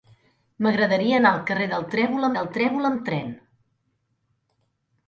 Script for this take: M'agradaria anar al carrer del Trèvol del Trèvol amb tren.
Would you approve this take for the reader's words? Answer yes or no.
yes